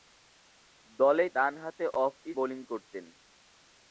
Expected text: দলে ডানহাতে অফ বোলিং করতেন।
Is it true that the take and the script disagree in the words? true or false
false